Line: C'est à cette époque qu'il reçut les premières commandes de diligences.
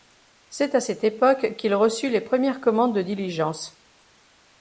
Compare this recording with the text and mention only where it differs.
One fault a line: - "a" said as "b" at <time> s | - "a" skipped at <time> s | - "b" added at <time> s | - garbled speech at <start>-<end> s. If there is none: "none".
none